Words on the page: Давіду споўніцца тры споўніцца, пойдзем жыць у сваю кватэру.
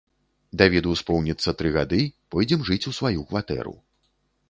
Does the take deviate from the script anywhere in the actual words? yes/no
yes